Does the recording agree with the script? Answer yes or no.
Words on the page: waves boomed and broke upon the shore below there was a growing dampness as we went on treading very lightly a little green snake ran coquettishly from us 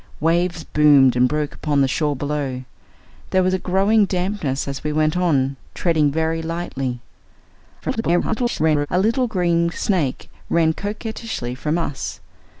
no